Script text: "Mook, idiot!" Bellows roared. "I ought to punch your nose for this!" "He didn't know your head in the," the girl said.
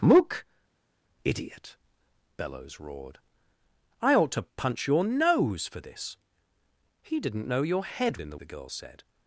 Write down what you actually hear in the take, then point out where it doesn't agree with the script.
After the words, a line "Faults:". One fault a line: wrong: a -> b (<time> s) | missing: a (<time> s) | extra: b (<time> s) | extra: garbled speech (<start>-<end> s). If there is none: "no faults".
"Mook, idiot!" Bellows roared. "I ought to punch your nose for this!" "He didn't know your head in the," the girl said.
Faults:
no faults